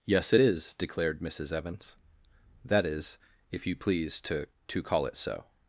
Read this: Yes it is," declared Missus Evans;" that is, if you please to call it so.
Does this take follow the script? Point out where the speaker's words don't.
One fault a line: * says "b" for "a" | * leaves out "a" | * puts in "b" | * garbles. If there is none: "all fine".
* puts in "to"